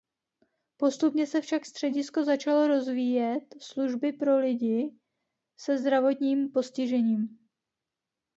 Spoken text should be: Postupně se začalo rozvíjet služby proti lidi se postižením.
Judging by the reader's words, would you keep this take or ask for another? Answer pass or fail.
fail